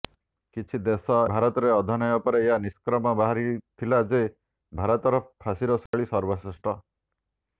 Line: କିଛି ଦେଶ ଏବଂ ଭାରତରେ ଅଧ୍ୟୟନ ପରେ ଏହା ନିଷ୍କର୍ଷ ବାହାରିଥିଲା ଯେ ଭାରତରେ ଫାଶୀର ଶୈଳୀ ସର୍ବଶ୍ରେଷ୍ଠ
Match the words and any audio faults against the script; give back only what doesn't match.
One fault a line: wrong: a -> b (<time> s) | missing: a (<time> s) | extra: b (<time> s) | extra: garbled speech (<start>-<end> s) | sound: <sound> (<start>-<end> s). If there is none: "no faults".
missing: ଏବଂ (1.2 s)
sound: dropout (5.9-5.9 s)